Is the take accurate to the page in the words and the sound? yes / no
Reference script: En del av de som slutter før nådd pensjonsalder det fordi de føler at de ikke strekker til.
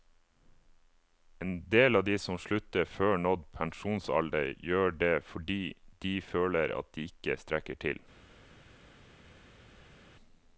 no